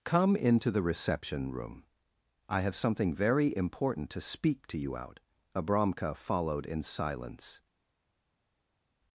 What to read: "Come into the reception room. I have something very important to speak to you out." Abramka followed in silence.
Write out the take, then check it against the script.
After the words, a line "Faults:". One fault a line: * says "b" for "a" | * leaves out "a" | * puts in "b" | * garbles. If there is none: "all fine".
"Come into the reception room. I have something very important to speak to you out." Abramka followed in silence.
Faults:
all fine